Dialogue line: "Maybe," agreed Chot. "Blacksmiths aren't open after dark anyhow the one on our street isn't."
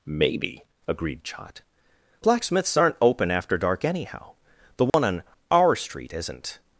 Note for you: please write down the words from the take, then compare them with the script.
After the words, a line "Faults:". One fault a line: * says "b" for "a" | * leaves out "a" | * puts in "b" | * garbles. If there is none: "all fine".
"Maybe," agreed Chot. "Blacksmiths aren't open after dark anyhow the one on our street isn't."
Faults:
all fine